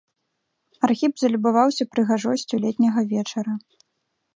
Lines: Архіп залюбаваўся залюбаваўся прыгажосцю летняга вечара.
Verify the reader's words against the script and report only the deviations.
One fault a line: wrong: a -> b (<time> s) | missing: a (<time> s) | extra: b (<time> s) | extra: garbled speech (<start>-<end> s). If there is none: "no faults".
missing: залюбаваўся (1.8 s)